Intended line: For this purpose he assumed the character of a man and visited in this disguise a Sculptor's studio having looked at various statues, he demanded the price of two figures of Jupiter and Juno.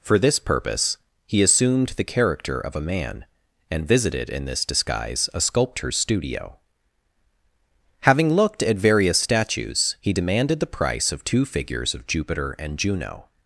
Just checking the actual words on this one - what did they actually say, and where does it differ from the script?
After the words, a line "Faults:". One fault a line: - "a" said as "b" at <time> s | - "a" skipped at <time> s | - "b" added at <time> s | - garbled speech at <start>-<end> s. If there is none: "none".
For this purpose he assumed the character of a man and visited in this disguise a Sculptor's studio having looked at various statues, he demanded the price of two figures of Jupiter and Juno.
Faults:
none